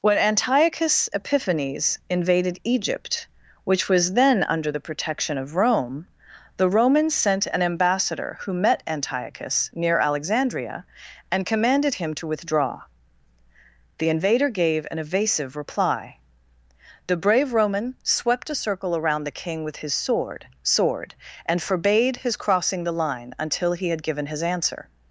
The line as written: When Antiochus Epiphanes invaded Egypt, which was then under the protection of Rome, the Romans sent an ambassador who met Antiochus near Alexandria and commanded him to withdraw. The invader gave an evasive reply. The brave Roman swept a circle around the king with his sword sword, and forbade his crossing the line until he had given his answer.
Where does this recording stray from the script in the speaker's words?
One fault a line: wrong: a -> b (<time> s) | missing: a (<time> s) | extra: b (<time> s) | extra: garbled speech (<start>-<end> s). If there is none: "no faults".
no faults